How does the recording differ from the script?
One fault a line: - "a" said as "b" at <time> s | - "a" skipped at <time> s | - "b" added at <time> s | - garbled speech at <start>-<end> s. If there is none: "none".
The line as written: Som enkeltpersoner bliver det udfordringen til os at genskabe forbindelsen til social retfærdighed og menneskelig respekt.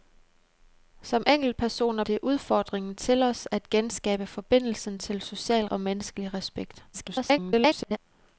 - "bliver" skipped at 2.0 s
- "retfærdighed" skipped at 5.7 s
- garbled speech at 6.9-8.0 s